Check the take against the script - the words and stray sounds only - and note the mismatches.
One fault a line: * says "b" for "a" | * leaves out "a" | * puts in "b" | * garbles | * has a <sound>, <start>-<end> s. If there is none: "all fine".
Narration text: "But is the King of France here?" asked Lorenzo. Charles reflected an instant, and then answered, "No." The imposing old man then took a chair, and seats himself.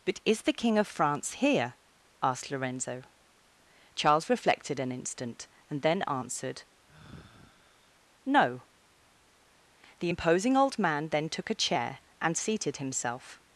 * has a sigh, 6.9-8.0 s
* says "seated" for "seats"